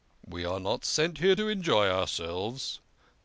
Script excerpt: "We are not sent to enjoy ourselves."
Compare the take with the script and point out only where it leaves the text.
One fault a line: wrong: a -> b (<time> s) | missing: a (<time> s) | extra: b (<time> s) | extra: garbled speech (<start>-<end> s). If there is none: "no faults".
extra: here (1.2 s)